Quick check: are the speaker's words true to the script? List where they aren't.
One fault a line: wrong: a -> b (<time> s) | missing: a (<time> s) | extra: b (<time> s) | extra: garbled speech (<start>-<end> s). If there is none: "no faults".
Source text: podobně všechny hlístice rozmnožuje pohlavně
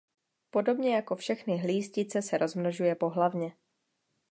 extra: jako (0.9 s)
extra: se (2.2 s)